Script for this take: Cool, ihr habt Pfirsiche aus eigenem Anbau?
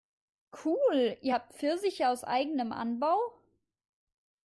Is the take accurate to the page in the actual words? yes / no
yes